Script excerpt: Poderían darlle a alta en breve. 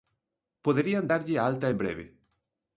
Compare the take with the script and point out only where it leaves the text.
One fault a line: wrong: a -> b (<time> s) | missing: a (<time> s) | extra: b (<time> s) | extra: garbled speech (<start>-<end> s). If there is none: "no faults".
no faults